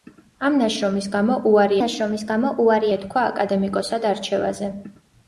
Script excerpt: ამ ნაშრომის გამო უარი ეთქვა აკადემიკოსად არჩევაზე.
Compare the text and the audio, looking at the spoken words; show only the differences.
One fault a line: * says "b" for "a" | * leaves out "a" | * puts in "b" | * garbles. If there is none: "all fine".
* puts in "ნაშრომის გამო უარი"